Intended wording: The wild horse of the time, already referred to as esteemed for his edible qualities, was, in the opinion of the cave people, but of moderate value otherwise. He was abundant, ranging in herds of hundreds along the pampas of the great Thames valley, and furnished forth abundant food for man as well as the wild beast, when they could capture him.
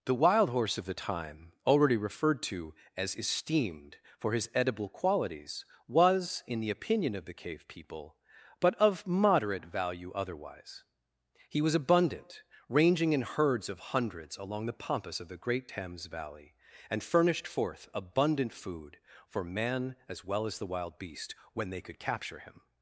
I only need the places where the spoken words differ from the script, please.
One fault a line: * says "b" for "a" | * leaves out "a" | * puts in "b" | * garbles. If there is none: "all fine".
all fine